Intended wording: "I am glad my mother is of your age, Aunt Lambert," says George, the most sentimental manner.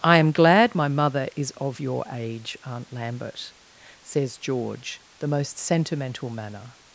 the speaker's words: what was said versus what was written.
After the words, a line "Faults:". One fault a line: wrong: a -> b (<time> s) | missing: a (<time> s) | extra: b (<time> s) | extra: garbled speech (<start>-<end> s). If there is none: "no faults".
"I am glad my mother is of your age, Aunt Lambert," says George, the most sentimental manner.
Faults:
no faults